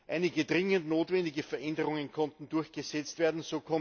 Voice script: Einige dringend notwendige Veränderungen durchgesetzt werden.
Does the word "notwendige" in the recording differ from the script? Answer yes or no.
no